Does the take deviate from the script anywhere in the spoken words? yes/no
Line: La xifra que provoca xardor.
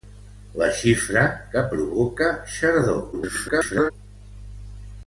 yes